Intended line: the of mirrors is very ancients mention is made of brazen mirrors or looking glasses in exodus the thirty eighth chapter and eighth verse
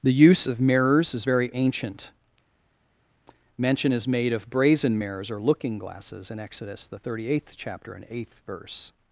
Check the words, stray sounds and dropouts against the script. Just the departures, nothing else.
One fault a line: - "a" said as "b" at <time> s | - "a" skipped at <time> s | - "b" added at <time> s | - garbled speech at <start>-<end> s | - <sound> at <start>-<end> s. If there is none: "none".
- "use" added at 0.1 s
- "ancients" said as "ancient" at 1.5 s